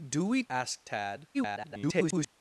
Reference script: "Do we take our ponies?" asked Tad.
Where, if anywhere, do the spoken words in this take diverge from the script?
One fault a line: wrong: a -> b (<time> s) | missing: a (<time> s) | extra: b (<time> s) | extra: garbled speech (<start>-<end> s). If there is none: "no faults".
missing: take our ponies (0.4 s)
extra: garbled speech (1.3-2.3 s)